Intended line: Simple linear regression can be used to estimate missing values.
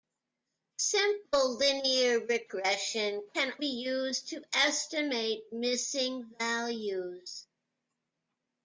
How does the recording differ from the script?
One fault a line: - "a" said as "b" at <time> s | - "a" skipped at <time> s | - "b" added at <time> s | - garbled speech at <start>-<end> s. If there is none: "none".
none